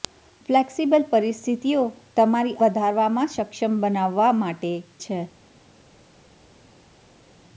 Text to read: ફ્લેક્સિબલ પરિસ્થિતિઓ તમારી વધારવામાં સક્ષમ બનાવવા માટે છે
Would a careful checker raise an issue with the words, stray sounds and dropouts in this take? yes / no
no